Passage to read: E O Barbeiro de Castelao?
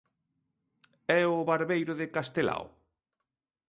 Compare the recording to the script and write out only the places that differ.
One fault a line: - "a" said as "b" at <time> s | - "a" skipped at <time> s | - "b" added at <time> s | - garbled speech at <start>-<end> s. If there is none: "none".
none